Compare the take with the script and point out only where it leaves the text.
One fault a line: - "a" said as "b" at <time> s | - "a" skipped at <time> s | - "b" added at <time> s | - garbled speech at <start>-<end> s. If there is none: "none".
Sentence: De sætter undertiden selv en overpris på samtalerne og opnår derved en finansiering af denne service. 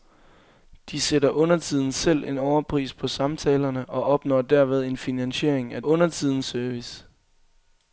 - "denne" said as "undertiden" at 5.8 s